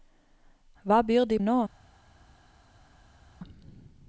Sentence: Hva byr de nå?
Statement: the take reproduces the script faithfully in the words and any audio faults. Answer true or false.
true